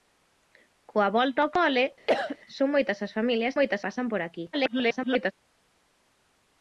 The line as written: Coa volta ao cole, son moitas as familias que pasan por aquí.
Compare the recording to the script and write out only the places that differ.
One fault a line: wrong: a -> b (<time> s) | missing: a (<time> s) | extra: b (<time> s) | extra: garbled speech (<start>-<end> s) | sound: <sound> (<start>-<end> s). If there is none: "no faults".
sound: cough (2.1-2.4 s)
wrong: que -> moitas (3.6 s)
extra: garbled speech (4.5-5.3 s)